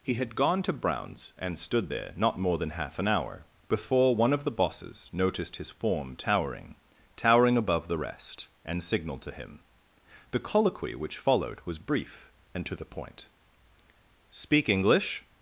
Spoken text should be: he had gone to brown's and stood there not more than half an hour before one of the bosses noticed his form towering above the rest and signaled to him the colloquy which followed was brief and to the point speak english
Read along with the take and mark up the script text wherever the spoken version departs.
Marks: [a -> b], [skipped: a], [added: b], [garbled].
he had gone to brown's and stood there not more than half an hour before one of the bosses noticed his form towering [added: towering] above the rest and signaled to him the colloquy which followed was brief and to the point speak english